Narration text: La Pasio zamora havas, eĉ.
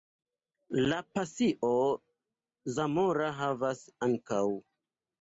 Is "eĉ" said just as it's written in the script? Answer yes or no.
no